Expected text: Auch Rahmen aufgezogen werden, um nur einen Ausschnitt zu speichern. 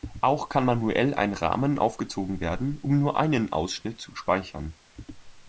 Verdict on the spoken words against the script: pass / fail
fail